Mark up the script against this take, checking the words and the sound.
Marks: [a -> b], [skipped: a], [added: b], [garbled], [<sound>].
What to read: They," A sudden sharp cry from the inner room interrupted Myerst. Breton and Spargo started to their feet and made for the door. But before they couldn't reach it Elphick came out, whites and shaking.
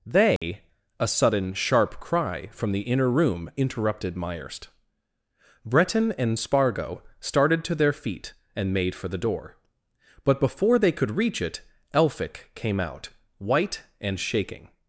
They," [dropout] A sudden sharp cry from the inner room interrupted Myerst. Breton and Spargo started to their feet and made for the door. But before they [couldn't -> could] reach it Elphick came out, [whites -> white] and shaking.